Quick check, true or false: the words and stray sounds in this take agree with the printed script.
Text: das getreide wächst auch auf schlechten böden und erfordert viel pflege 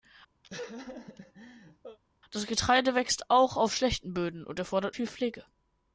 false